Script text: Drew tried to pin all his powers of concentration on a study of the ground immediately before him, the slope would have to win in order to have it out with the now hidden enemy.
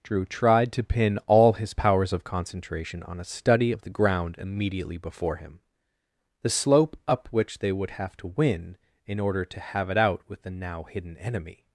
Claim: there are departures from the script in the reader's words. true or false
true